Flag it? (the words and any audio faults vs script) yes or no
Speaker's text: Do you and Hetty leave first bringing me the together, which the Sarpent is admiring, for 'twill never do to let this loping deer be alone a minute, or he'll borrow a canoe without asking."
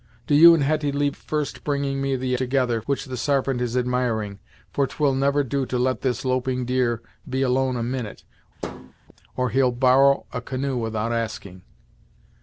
yes